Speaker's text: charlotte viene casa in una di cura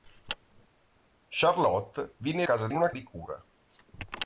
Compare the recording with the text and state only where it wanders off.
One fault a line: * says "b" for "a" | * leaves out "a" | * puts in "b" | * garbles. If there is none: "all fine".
all fine